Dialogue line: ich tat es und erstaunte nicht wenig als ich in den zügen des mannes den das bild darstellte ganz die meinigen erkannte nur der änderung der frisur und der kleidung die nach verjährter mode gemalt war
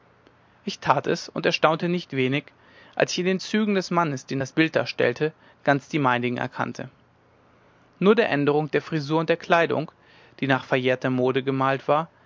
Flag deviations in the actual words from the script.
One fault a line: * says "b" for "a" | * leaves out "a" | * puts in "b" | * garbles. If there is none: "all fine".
all fine